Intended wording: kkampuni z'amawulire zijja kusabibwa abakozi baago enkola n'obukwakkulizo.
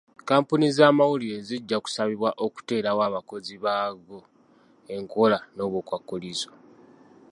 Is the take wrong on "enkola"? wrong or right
right